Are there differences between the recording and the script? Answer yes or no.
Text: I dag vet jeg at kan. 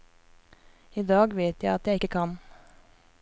yes